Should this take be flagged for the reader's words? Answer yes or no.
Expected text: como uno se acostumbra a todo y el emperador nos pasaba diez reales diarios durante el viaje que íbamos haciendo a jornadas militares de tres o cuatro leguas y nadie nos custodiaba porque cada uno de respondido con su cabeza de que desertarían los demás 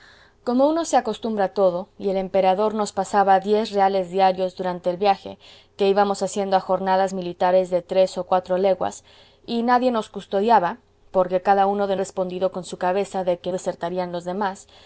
no